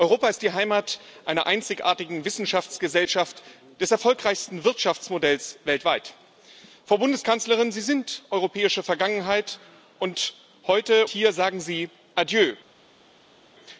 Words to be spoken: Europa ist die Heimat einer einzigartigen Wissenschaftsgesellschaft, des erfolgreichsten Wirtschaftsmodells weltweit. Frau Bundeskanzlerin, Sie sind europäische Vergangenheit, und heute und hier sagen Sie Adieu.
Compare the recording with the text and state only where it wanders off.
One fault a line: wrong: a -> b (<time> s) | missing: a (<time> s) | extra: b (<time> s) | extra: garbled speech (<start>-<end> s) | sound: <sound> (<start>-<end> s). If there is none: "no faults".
missing: und (11.1 s)